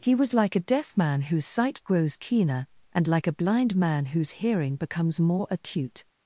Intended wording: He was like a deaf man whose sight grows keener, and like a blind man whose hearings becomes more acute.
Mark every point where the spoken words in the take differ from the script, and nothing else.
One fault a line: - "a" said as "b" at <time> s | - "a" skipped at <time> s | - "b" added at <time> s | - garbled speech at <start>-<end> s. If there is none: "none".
- "hearings" said as "hearing" at 4.4 s